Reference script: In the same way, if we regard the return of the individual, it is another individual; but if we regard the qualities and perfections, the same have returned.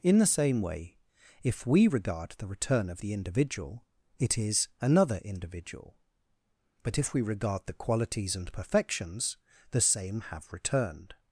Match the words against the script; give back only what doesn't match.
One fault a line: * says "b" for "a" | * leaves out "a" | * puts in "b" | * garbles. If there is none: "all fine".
all fine